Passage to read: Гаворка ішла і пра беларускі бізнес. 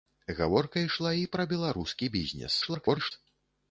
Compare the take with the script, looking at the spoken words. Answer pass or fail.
fail